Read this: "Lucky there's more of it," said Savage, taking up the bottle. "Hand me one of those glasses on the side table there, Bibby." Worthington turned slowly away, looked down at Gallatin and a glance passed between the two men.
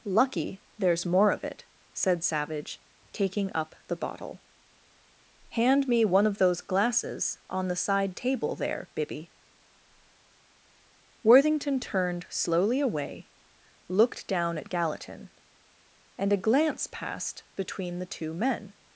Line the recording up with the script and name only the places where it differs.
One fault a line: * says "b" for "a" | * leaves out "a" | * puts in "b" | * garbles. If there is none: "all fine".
all fine